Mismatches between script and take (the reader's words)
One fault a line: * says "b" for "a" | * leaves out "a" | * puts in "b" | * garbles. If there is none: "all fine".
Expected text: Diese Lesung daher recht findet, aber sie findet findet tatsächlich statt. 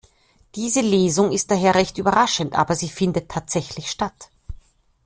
* puts in "ist"
* says "überraschend" for "findet"
* leaves out "findet"